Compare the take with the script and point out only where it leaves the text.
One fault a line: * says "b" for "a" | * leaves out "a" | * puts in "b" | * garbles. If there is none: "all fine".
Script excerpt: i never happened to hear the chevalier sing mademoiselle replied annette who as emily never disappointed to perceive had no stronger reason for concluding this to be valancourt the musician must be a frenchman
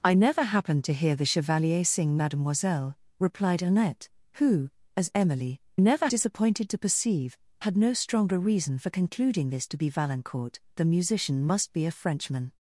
all fine